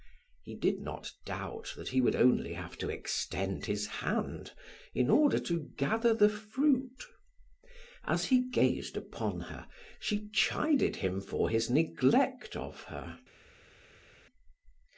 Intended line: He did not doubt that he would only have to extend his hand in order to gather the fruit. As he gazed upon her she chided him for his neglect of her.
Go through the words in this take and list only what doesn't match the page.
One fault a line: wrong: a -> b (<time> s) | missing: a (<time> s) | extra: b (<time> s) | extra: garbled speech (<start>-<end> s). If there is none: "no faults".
no faults